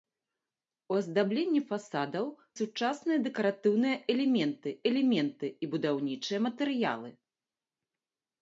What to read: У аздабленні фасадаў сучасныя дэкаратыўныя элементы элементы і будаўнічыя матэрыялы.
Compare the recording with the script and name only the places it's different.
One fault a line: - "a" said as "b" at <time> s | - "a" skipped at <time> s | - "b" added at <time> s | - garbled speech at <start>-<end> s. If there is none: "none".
none